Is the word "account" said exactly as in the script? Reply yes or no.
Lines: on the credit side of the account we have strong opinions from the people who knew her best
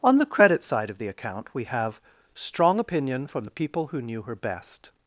yes